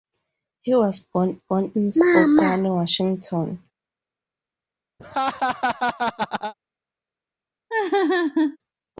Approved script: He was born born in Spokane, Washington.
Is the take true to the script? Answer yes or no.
yes